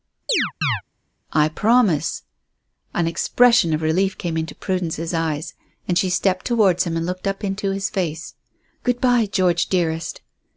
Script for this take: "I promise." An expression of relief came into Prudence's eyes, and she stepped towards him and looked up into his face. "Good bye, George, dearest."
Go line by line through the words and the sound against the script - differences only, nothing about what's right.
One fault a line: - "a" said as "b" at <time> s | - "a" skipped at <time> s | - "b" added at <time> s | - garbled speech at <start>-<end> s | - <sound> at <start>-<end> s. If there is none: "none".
- chirp at 0.3-0.8 s